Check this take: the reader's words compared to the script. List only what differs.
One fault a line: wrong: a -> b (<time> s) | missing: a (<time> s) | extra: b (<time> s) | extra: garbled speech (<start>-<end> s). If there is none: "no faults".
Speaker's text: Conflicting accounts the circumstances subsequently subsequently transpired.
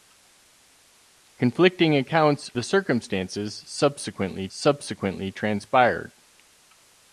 no faults